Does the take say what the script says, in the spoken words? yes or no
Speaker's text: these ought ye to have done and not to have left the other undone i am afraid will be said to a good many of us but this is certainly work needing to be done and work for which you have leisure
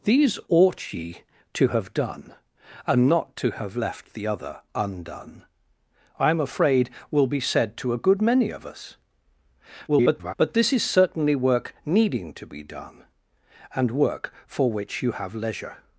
no